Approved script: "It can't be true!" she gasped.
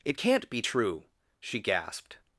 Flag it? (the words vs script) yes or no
no